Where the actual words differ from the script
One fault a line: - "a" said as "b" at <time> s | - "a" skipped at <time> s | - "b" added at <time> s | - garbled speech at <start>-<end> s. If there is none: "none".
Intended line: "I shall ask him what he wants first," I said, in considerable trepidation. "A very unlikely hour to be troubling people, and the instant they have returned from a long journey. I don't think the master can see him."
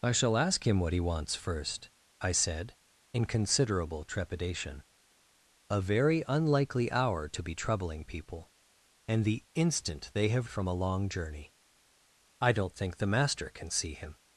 - "returned" skipped at 10.5 s